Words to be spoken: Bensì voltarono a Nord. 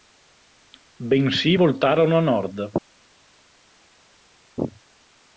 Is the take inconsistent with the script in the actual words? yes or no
no